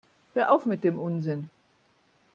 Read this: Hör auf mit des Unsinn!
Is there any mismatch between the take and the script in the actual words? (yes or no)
yes